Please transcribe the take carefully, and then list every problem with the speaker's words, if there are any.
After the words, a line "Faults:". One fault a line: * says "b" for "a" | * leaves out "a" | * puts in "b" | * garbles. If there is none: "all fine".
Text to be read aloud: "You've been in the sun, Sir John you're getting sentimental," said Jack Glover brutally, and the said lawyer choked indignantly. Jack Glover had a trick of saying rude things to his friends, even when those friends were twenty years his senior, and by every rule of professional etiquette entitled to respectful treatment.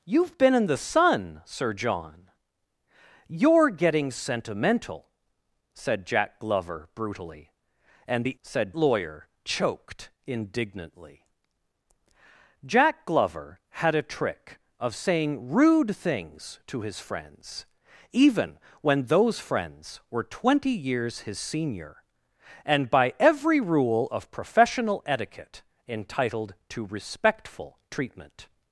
"You've been in the sun, Sir John you're getting sentimental," said Jack Glover brutally, and the said lawyer choked indignantly. Jack Glover had a trick of saying rude things to his friends, even when those friends were twenty years his senior, and by every rule of professional etiquette entitled to respectful treatment.
Faults:
all fine